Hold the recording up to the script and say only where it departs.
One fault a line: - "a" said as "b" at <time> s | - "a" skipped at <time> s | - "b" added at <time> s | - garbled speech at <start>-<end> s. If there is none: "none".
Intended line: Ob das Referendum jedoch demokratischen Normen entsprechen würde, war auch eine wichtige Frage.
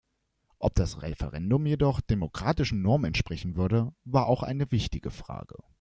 none